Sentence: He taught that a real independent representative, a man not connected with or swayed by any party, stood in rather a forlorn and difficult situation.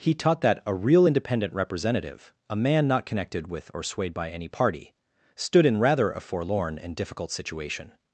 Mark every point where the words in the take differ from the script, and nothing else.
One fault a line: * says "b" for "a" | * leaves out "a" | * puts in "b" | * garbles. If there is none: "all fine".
all fine